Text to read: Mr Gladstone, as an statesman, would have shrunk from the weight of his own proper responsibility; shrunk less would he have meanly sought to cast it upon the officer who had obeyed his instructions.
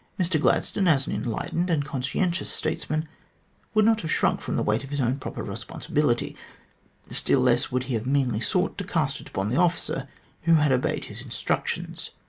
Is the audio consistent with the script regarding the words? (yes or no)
no